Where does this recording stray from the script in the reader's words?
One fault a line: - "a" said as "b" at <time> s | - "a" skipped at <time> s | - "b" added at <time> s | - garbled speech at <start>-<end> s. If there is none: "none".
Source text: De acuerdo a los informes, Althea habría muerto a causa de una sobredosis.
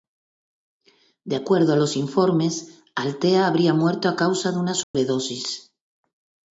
none